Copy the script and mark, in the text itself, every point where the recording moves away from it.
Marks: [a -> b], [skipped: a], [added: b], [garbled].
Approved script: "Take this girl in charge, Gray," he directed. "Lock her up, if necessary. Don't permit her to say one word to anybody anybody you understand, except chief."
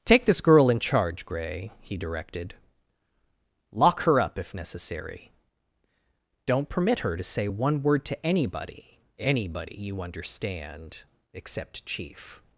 "Take this girl in charge, Gray," he directed. "Lock her up, if necessary. Don't permit her to say one word to anybody anybody you understand, except chief."